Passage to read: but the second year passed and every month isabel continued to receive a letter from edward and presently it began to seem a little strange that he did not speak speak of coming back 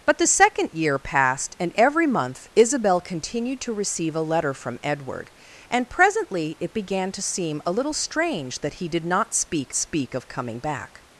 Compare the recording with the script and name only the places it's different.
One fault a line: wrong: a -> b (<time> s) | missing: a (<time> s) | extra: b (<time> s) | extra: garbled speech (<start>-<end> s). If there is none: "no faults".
no faults